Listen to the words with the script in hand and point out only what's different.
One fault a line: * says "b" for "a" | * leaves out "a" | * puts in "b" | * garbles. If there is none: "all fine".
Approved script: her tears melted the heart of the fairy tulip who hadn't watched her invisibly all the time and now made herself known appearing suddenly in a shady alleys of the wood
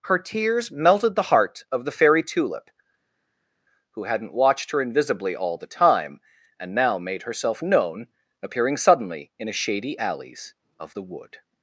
all fine